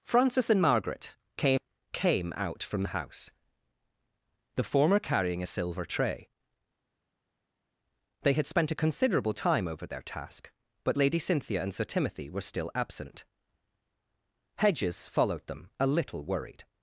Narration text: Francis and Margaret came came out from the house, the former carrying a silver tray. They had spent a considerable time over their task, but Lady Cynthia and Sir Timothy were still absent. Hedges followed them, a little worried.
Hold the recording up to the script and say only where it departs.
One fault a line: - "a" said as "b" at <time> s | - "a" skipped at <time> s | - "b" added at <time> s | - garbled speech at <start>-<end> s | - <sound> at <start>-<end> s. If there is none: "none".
none